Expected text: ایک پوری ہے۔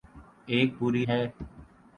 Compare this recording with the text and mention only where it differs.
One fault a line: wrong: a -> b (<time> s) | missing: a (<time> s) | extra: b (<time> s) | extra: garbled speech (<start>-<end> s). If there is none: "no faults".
no faults